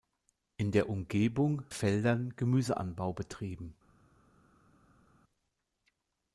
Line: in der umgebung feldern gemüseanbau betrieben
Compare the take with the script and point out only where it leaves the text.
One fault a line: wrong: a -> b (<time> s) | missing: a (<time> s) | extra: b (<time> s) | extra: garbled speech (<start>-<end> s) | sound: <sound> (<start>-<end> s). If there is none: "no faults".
no faults